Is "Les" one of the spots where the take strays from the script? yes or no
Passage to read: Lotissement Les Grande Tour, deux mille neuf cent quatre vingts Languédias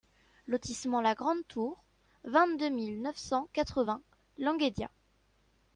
yes